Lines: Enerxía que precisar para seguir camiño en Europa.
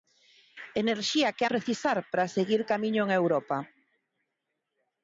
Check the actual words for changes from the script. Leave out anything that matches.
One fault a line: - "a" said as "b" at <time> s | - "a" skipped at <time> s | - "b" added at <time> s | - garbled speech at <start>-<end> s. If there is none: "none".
none